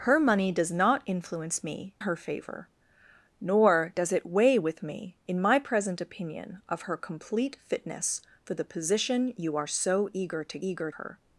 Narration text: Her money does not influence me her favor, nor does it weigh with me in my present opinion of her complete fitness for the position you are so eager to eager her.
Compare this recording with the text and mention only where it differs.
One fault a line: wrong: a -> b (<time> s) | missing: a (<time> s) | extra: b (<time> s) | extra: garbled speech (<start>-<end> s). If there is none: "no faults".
no faults